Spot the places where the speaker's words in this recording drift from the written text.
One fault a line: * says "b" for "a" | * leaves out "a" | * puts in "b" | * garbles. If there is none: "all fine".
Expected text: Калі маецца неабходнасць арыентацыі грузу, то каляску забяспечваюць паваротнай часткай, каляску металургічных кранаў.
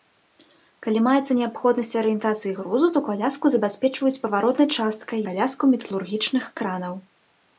all fine